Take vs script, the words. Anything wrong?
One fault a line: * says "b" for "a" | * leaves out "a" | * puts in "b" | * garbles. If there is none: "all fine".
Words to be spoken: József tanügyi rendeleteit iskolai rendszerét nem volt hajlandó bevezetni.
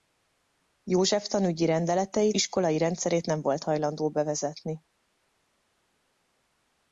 all fine